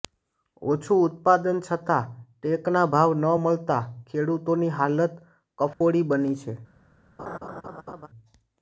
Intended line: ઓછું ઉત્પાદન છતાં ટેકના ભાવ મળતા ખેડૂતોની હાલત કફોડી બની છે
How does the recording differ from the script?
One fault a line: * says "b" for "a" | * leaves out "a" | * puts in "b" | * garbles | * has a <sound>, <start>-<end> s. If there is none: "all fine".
* puts in "ન"
* has a dropout, 5.7-5.8 s
* has a laugh, 7.2-8.1 s